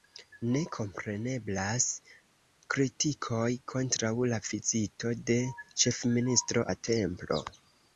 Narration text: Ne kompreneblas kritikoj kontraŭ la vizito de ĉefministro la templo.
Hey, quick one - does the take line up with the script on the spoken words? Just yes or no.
yes